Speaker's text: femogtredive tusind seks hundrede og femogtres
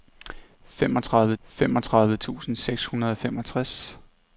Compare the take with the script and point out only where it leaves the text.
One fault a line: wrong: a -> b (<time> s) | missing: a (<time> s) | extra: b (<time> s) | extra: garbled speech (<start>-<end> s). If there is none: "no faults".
extra: femogtredive (1.4 s)